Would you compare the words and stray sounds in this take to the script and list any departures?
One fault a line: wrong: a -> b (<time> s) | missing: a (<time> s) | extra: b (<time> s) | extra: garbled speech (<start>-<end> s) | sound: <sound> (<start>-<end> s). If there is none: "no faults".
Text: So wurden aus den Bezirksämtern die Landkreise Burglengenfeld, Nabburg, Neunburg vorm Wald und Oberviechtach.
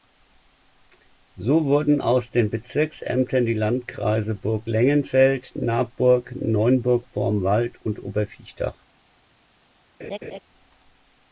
sound: laugh (10.0-10.4 s)